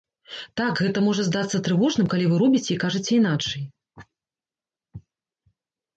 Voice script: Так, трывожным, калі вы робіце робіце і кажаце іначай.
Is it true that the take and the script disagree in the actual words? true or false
true